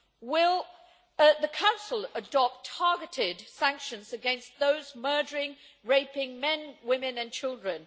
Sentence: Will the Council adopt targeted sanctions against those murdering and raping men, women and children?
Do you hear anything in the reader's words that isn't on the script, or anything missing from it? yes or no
no